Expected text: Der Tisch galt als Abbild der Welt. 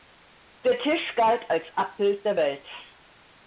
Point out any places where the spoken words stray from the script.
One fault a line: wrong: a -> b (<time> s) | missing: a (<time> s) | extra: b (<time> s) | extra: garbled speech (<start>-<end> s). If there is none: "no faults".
no faults